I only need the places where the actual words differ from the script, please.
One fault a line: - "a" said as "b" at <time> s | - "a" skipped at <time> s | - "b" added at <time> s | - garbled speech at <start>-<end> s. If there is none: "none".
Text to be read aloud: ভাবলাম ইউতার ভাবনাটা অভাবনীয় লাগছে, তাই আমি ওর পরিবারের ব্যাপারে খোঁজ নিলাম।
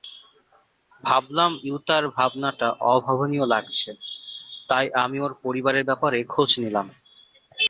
none